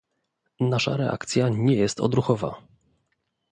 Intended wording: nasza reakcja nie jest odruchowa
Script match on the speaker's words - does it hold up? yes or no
yes